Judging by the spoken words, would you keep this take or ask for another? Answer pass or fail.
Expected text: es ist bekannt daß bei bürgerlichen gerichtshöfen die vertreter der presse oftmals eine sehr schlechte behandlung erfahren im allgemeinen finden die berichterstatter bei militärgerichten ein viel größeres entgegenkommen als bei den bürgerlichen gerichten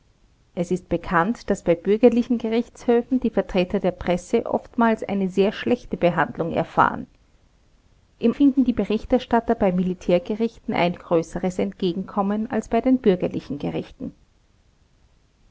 fail